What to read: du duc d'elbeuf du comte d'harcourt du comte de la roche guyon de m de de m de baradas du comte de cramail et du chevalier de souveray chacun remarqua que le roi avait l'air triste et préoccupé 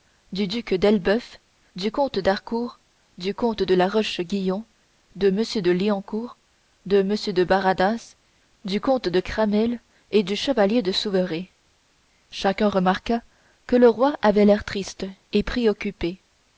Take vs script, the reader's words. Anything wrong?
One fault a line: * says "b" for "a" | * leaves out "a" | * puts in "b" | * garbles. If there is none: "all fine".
* puts in "liancourt"